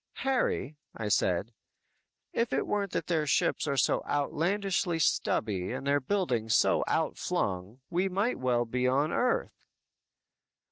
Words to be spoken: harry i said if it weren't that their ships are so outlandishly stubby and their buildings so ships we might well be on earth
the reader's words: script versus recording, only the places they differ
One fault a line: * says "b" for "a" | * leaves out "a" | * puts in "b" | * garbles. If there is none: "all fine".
* says "outflung" for "ships"